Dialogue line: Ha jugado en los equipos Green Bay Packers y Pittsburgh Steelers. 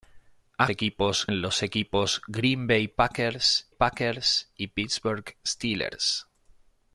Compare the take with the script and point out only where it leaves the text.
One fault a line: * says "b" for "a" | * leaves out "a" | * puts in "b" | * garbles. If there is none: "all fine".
* says "equipos" for "jugado"
* puts in "Packers"